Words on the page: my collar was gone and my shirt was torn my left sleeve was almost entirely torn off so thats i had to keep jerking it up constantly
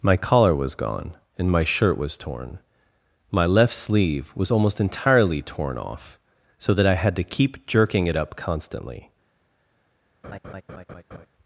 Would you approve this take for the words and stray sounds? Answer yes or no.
no